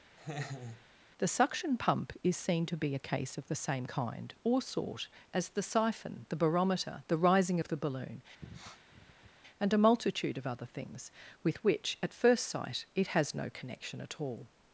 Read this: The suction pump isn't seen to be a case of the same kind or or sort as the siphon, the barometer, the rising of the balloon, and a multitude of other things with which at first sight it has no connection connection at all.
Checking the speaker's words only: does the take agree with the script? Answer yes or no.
no